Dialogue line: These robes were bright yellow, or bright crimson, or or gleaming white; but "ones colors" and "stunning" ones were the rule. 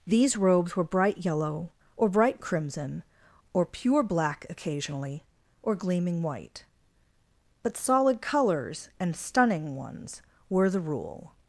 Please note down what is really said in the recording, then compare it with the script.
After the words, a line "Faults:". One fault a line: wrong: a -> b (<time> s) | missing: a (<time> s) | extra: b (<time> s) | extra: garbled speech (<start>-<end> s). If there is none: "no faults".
These robes were bright yellow, or bright crimson, or pure black occasionally, or gleaming white; but "solid colors" and "stunning" ones were the rule.
Faults:
extra: pure black occasionally (3.7 s)
wrong: ones -> solid (7.8 s)